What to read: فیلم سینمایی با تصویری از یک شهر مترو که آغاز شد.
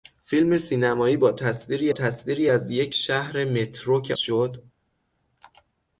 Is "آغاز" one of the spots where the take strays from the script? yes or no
yes